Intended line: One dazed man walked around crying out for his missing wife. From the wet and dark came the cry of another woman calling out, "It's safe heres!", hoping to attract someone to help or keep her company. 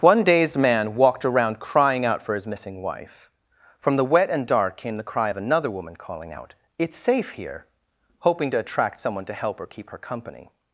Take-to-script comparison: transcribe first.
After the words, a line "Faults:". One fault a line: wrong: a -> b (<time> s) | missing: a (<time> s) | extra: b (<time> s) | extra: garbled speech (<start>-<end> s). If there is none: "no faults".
One dazed man walked around crying out for his missing wife. From the wet and dark came the cry of another woman calling out, "It's safe here!", hoping to attract someone to help or keep her company.
Faults:
wrong: heres -> here (7.3 s)